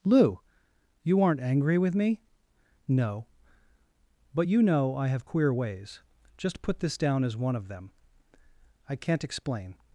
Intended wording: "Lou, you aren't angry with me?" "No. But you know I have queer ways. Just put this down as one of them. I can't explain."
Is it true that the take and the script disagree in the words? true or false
false